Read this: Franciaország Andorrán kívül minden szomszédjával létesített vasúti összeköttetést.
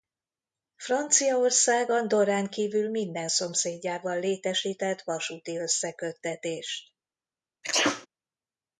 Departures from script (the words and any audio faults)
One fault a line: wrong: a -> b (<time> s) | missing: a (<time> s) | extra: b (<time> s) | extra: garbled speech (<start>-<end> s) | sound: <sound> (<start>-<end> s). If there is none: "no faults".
sound: sneeze (7.6-8.1 s)